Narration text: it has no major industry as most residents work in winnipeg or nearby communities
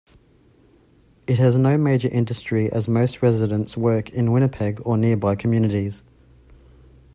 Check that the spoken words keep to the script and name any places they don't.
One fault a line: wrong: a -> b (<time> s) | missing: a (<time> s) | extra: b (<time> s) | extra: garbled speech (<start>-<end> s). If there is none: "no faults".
no faults